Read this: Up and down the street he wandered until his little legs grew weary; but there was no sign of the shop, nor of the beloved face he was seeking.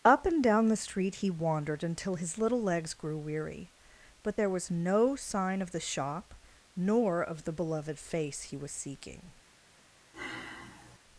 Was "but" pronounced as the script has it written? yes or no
yes